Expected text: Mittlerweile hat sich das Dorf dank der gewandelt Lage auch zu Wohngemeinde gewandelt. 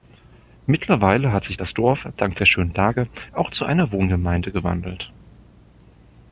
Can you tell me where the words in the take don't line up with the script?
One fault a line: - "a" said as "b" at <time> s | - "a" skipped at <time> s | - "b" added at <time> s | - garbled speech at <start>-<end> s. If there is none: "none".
- "gewandelt" said as "schönen" at 2.4 s
- "einer" added at 3.6 s